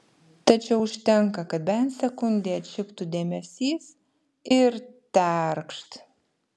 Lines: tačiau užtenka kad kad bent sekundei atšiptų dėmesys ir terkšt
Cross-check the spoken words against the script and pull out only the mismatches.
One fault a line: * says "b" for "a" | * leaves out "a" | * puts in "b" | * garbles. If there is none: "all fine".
* leaves out "kad"